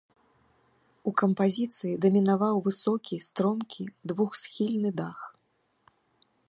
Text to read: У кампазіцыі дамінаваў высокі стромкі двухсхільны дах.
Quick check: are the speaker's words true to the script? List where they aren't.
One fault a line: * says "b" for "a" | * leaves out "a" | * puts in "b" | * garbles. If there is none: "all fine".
all fine